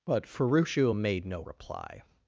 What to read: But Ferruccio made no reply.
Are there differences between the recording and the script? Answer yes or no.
no